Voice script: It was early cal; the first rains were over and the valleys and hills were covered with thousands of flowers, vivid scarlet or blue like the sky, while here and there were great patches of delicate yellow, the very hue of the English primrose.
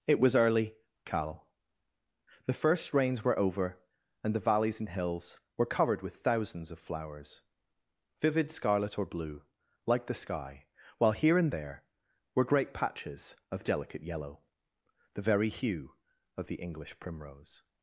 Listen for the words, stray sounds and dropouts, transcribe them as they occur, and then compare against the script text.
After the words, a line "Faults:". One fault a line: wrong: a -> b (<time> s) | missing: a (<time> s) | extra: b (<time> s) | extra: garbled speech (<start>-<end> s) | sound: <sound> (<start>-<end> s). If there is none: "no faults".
It was early cal; the first rains were over and the valleys and hills were covered with thousands of flowers, vivid scarlet or blue like the sky, while here and there were great patches of delicate yellow, the very hue of the English primrose.
Faults:
no faults